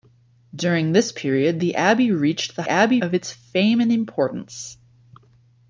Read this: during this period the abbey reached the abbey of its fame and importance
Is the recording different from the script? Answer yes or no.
no